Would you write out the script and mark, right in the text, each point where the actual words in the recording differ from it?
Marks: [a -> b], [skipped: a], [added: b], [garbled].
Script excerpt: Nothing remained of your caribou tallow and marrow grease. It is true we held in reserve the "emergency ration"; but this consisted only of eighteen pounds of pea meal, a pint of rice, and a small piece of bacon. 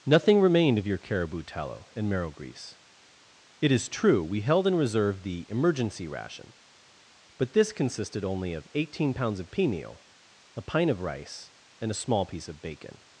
Nothing remained of your caribou tallow and marrow grease. It is true we held in reserve the "emergency ration"; but this consisted only of eighteen pounds of pea meal, a pint of rice, and a small piece of bacon.